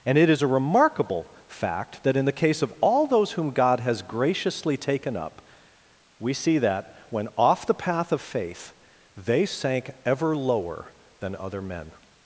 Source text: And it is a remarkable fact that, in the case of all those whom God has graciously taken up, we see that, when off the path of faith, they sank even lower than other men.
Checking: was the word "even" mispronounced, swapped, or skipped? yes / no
yes